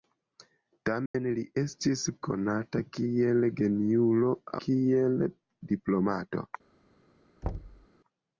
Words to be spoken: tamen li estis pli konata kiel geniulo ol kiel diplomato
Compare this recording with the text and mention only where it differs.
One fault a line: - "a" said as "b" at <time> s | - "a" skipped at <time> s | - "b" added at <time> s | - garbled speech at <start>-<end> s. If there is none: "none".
- "pli" skipped at 2.0 s
- "ol" skipped at 4.3 s